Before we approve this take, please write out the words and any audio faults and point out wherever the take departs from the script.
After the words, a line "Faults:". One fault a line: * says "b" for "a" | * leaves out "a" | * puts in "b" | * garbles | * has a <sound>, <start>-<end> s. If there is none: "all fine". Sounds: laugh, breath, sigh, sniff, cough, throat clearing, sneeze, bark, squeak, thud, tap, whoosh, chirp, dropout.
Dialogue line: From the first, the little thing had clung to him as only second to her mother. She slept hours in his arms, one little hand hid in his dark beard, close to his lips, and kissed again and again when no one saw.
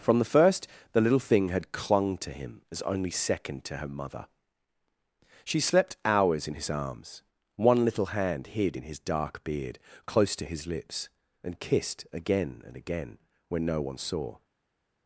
From the first, the little thing had clung to him as only second to her mother. She slept hours in his arms, one little hand hid in his dark beard, close to his lips, and kissed again and again when no one saw.
Faults:
all fine